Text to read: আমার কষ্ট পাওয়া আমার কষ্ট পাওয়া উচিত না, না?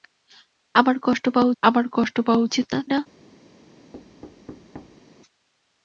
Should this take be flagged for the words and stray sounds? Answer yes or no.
yes